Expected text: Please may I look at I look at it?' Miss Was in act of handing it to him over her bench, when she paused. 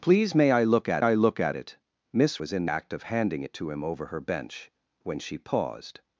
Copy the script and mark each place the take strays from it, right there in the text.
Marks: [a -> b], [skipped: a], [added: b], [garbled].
Please may I look at I look at it?' Miss Was in act of handing it to him over her bench, when she paused.